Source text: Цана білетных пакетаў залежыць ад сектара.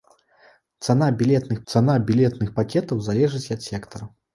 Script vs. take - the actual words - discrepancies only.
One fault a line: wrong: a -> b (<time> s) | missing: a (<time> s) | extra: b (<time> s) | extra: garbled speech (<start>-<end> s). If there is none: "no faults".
extra: цана білетных (1.7 s)